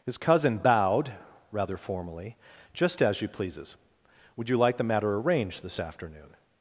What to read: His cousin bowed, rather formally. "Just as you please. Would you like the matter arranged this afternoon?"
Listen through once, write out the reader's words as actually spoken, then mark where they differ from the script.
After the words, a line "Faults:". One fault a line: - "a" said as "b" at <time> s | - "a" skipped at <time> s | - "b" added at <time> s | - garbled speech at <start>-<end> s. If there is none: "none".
His cousin bowed, rather formally. "Just as you pleases. Would you like the matter arranged this afternoon?"
Faults:
- "please" said as "pleases" at 3.3 s